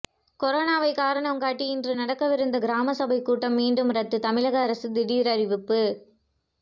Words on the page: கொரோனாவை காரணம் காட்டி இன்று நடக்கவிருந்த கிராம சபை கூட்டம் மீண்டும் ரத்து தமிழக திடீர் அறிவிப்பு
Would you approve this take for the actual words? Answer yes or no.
no